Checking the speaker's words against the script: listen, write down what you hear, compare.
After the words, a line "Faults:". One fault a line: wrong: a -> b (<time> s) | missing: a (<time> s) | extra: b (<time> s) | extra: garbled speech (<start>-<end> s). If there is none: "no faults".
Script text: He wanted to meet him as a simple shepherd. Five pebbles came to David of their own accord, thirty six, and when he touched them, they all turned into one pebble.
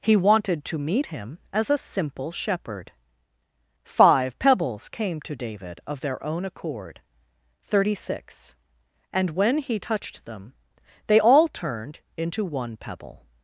He wanted to meet him as a simple shepherd. Five pebbles came to David of their own accord, thirty six, and when he touched them, they all turned into one pebble.
Faults:
no faults